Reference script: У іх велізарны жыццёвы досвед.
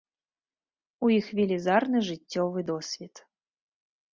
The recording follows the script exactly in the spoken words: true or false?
true